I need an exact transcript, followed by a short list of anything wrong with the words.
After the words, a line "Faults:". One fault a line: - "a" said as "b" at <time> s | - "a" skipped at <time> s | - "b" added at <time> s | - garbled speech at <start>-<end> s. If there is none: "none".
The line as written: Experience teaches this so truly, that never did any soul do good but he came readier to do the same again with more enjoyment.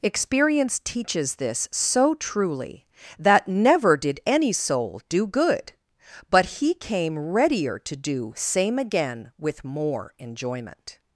Experience teaches this so truly, that never did any soul do good but he came readier to do same again with more enjoyment.
Faults:
- "the" skipped at 8.3 s